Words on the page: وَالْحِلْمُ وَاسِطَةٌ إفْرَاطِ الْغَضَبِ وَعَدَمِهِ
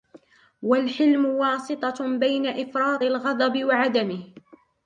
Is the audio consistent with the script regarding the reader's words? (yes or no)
no